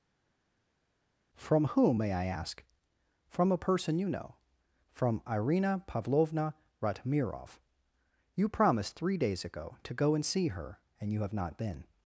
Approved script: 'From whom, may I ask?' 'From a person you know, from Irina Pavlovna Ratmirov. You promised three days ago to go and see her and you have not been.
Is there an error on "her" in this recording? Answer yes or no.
no